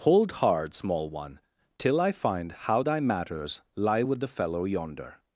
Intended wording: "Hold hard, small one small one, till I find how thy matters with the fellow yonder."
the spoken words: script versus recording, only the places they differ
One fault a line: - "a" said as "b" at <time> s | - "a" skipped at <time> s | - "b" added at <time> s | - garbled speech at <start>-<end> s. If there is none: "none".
- "small one" skipped at 1.4 s
- "lie" added at 3.7 s